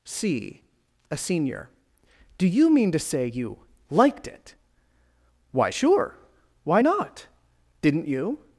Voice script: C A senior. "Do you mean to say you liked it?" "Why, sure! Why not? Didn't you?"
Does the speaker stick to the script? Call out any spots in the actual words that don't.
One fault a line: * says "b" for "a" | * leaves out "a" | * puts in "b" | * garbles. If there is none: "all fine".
all fine